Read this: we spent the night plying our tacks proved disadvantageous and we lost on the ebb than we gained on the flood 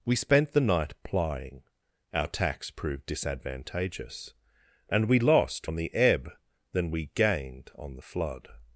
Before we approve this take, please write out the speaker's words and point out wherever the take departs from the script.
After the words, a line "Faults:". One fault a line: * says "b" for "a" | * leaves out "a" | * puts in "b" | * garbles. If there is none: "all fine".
we spent the night plying our tacks proved disadvantageous and we lost on the ebb than we gained on the flood
Faults:
all fine